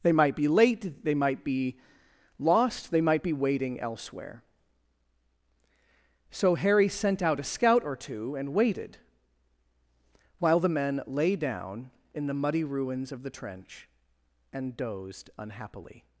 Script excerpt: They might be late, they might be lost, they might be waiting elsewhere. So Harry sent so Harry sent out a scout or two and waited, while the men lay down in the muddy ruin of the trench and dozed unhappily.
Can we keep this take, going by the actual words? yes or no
no